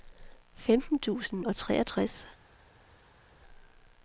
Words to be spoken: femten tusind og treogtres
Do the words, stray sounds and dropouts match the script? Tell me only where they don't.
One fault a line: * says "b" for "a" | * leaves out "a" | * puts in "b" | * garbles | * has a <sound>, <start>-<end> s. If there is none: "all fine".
all fine